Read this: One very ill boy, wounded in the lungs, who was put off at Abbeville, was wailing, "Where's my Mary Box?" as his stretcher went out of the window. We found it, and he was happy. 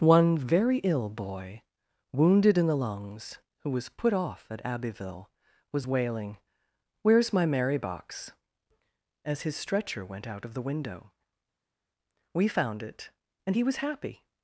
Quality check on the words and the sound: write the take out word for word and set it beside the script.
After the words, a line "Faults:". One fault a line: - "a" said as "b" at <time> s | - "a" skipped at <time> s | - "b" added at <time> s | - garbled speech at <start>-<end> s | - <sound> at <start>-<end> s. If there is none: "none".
One very ill boy, wounded in the lungs, who was put off at Abbeville, was wailing, "Where's my Mary Box?" as his stretcher went out of the window. We found it, and he was happy.
Faults:
none